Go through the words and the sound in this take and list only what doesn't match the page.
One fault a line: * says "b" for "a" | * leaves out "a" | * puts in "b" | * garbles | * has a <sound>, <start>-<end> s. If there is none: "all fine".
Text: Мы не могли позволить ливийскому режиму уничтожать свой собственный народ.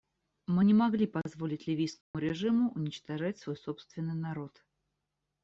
* has a dropout, 2.0-2.1 s